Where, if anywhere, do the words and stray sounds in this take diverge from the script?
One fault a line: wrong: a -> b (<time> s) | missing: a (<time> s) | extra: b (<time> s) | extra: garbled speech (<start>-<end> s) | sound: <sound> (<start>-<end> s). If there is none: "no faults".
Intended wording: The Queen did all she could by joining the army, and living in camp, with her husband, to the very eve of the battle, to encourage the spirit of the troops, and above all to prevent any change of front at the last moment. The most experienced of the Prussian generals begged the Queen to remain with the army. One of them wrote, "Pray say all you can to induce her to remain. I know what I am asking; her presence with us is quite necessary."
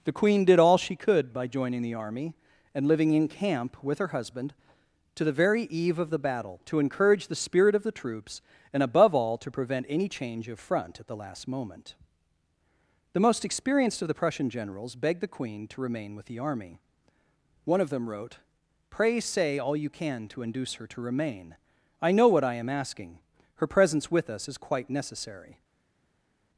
no faults